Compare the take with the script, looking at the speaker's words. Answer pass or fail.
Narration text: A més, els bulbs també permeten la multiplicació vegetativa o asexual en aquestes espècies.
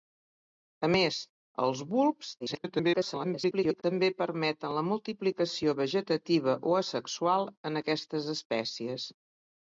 fail